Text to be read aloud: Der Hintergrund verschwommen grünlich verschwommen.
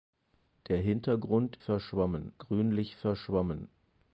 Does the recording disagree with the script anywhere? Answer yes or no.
no